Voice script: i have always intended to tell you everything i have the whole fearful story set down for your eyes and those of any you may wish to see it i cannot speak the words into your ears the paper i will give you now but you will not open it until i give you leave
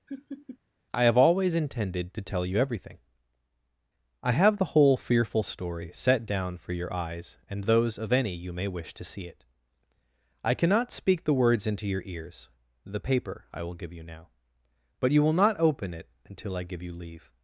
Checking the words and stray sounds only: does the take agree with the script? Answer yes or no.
no